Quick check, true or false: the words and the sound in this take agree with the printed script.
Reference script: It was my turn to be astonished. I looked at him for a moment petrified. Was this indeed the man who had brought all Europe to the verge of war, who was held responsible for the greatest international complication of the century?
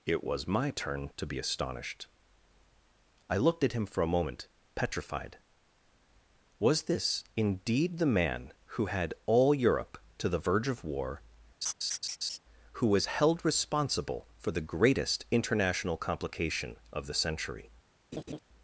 false